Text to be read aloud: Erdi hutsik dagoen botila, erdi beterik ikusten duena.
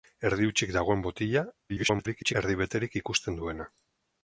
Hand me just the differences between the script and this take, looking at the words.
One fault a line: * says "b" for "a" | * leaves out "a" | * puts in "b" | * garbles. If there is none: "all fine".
* garbles